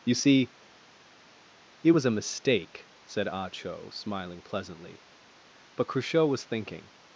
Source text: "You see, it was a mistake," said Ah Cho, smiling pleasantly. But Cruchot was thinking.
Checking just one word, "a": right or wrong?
right